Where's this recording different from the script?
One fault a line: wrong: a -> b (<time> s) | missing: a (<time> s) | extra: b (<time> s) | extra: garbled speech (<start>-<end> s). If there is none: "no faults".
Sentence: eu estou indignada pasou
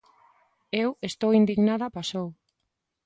no faults